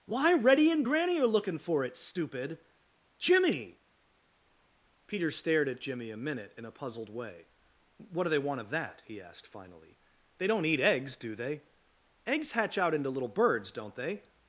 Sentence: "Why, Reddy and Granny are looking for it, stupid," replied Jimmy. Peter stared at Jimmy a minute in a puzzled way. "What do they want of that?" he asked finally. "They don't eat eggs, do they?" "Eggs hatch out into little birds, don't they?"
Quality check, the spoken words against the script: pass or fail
fail